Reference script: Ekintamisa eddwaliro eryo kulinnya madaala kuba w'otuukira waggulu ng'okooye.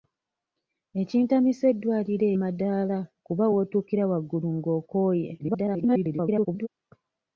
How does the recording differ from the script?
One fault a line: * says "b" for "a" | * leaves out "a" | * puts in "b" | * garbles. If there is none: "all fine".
* leaves out "eryo kulinnya"
* garbles